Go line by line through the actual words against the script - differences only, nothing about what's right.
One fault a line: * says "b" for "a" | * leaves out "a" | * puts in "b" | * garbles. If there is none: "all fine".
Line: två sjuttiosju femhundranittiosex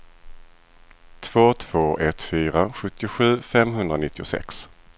* puts in "två ett fyra"